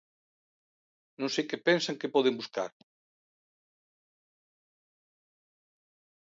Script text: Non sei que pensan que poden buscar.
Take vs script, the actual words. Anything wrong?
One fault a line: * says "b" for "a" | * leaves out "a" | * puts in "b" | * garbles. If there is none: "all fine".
all fine